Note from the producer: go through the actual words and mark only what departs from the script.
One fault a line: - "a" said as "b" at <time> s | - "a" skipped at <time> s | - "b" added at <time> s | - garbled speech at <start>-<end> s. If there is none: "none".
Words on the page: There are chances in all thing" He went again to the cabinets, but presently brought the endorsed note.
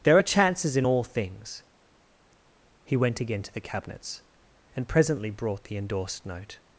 - "thing" said as "things" at 1.0 s
- "but" said as "and" at 4.7 s